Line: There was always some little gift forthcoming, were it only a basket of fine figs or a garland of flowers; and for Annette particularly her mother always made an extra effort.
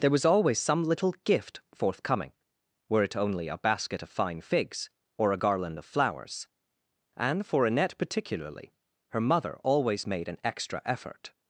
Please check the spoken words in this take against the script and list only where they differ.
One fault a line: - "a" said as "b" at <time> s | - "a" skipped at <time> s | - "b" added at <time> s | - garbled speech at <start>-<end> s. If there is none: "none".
none